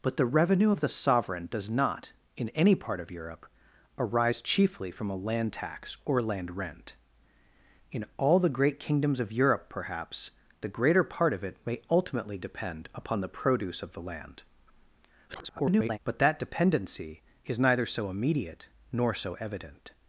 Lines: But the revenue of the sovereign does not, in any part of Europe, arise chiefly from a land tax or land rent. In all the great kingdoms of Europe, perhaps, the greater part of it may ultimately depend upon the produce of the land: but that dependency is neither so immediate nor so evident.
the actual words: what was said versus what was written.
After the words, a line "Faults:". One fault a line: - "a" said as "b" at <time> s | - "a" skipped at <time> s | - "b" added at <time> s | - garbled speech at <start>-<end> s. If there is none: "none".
But the revenue of the sovereign does not, in any part of Europe, arise chiefly from a land tax or land rent. In all the great kingdoms of Europe, perhaps, the greater part of it may ultimately depend upon the produce of the land: [garbled] but that dependency is neither so immediate nor so evident.
Faults:
- garbled speech at 15.3-16.0 s